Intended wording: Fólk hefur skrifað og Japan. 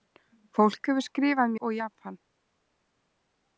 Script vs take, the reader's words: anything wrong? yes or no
no